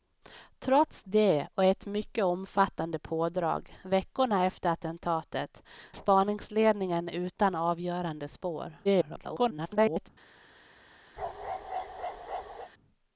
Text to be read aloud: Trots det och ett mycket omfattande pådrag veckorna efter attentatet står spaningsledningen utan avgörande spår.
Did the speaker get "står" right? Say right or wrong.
wrong